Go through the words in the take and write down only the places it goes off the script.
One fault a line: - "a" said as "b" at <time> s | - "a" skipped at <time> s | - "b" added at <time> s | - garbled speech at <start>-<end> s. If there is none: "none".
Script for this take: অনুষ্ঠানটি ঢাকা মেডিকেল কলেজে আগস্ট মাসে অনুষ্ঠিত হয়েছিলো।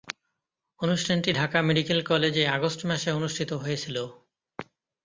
none